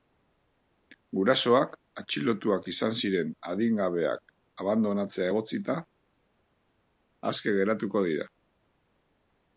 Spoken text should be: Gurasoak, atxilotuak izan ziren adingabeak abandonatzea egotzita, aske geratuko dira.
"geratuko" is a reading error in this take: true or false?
false